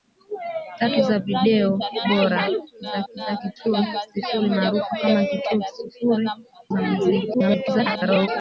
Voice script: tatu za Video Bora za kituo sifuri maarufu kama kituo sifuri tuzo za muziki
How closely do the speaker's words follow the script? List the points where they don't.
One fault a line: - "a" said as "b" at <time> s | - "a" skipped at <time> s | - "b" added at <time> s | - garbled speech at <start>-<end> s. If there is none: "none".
- "za" added at 3.1 s
- "tuzo" skipped at 6.3 s
- garbled speech at 7.3-8.3 s